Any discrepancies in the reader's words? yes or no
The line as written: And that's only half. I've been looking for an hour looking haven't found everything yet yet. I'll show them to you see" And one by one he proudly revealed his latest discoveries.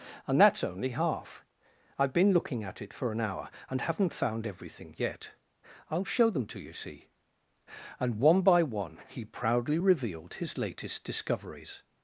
yes